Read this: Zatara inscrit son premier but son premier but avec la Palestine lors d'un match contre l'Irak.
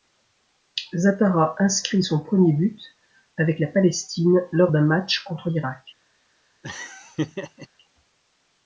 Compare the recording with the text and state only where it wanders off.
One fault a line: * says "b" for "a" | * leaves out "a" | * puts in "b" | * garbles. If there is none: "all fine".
* leaves out "son premier but"